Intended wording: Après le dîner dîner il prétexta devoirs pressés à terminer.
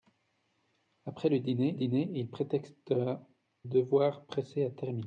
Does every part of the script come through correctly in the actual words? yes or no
yes